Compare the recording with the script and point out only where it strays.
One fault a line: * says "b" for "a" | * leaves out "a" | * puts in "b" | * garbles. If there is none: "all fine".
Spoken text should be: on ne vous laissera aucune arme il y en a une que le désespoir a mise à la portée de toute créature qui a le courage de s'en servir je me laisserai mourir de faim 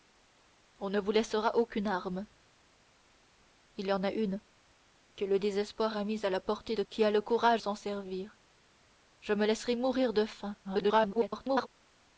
* leaves out "toute créature"
* leaves out "de"
* garbles